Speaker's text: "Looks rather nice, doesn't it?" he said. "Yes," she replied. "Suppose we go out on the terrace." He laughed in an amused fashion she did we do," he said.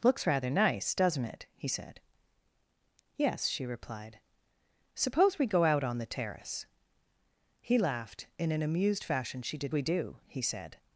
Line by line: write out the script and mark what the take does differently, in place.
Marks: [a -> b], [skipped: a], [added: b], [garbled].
"Looks rather nice, doesn't it?" he said. "Yes," she replied. "Suppose we go out on the terrace." He laughed in an amused fashion she did we do," he said.